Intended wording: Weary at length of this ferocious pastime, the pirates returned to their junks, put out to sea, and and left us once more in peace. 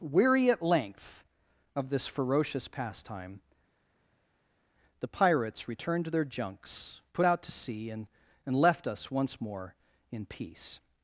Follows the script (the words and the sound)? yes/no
yes